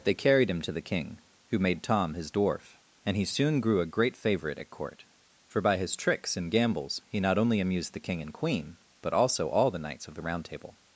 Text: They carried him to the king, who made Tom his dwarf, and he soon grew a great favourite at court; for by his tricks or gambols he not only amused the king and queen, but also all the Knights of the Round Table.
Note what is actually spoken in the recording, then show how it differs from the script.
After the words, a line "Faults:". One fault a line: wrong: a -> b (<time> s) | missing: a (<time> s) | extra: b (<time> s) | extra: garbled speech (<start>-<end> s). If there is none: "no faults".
They carried him to the king, who made Tom his dwarf, and he soon grew a great favourite at court; for by his tricks and gambols he not only amused the king and queen, but also all the Knights of the Round Table.
Faults:
wrong: or -> and (6.3 s)